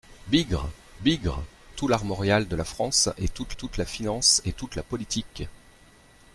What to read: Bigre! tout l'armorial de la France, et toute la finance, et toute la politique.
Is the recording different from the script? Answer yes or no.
yes